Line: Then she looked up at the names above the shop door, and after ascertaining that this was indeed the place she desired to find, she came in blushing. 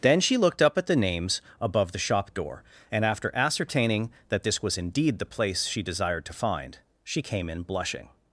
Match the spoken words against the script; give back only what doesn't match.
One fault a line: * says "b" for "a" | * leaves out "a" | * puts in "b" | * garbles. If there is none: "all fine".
all fine